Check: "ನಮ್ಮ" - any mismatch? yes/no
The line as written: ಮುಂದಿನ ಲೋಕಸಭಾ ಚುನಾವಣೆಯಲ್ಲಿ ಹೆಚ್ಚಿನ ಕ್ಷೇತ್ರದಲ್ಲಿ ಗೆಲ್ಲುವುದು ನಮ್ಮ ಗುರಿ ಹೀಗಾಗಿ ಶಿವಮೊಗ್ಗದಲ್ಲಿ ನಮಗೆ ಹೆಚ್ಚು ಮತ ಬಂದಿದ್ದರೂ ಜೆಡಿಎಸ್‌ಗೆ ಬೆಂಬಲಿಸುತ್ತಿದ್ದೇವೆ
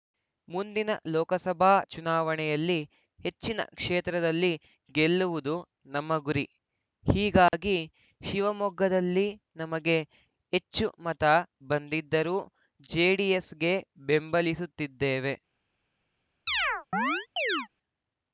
no